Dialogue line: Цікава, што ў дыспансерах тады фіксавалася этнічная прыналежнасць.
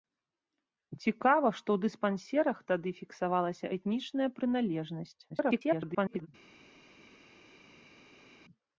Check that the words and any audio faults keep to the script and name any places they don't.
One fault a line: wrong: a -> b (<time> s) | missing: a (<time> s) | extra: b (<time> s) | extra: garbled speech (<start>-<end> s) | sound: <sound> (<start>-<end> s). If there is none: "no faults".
extra: garbled speech (5.3-6.3 s)